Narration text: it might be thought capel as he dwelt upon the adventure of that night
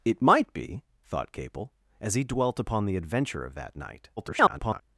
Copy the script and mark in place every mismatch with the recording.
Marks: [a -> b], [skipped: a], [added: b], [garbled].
it might be thought capel as he dwelt upon the adventure of that night [garbled]